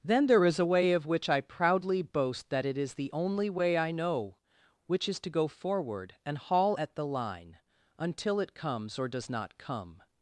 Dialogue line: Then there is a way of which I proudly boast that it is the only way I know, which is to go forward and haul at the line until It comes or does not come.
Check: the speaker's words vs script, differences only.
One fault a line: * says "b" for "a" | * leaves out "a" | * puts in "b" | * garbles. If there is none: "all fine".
all fine